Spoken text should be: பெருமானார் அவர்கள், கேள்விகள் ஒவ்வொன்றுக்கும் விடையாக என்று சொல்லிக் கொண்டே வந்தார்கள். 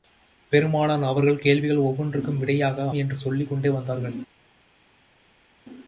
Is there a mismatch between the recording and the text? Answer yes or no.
no